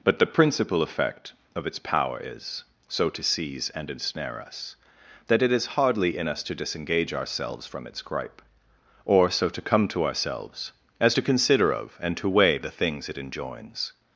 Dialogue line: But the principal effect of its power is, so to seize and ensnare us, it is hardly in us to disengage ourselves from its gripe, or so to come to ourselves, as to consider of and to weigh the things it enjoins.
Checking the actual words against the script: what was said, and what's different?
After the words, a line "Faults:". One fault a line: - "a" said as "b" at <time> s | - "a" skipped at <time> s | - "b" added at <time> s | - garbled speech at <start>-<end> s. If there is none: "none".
But the principal effect of its power is, so to seize and ensnare us, that it is hardly in us to disengage ourselves from its gripe, or so to come to ourselves, as to consider of and to weigh the things it enjoins.
Faults:
- "that" added at 5.3 s